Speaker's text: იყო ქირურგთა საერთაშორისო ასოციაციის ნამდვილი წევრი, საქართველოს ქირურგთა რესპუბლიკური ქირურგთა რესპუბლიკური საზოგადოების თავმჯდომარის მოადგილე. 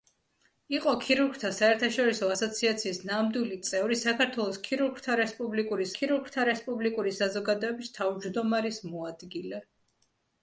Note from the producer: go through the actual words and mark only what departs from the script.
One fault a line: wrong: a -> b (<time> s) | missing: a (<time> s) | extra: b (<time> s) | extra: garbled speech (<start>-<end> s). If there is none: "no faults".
no faults